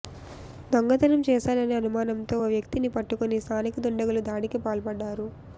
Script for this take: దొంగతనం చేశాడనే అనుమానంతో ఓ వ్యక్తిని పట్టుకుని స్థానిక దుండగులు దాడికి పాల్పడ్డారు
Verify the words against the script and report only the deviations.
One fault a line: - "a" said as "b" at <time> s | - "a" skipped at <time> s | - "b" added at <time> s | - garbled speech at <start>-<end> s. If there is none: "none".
none